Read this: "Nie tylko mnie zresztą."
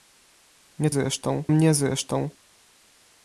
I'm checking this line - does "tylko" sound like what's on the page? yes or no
no